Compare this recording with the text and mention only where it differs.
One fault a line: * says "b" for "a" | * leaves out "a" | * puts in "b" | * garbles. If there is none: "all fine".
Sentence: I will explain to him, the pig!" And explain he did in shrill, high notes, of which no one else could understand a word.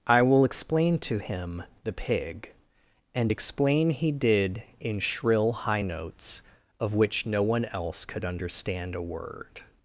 all fine